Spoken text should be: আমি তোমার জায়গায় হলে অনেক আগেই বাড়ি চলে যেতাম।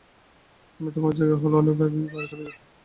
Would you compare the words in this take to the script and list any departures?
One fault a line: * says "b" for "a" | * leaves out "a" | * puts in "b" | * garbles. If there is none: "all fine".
all fine